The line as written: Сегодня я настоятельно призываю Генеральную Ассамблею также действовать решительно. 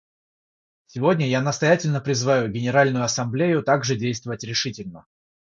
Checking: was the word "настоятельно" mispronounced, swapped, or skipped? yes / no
no